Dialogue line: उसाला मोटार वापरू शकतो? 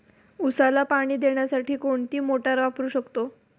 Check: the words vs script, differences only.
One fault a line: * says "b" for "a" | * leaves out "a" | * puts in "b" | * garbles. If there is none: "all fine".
* puts in "पाणी देण्यासाठी कोणती"